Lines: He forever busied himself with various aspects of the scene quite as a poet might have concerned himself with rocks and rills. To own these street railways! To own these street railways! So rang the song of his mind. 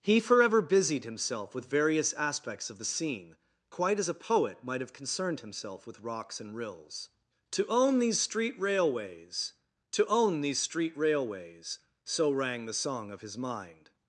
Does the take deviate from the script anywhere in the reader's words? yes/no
no